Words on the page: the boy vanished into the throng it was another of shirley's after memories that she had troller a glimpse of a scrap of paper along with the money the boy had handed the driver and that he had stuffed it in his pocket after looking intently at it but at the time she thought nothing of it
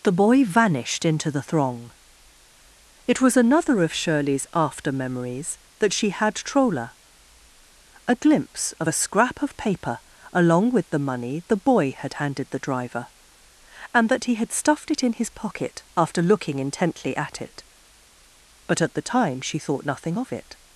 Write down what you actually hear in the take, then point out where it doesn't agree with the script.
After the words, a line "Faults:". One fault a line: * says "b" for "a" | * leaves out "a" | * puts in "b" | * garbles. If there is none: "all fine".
the boy vanished into the throng it was another of shirley's after memories that she had troller a glimpse of a scrap of paper along with the money the boy had handed the driver and that he had stuffed it in his pocket after looking intently at it but at the time she thought nothing of it
Faults:
all fine